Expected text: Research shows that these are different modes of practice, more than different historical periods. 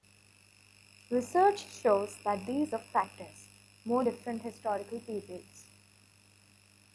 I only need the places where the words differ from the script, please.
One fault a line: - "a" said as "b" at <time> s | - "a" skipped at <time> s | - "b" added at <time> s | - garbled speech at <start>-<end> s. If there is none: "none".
- "are different modes" skipped at 2.7 s
- "than" skipped at 4.0 s